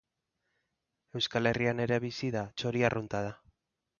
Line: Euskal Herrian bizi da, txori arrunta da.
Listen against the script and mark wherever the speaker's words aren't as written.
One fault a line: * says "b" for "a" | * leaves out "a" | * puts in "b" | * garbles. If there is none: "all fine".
* puts in "ere"